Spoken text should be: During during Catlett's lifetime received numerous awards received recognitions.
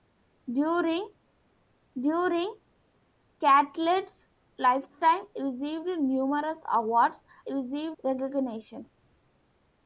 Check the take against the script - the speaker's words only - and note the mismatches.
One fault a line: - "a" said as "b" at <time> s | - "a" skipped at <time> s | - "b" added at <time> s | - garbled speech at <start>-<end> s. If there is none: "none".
none